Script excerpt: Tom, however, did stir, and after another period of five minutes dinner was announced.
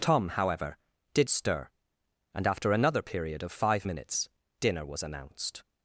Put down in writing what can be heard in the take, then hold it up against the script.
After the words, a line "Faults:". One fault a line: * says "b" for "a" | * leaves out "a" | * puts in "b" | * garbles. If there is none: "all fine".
Tom, however, did stir, and after another period of five minutes dinner was announced.
Faults:
all fine